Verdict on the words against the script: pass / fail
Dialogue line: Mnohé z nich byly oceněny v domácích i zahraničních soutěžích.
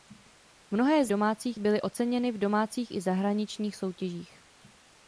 fail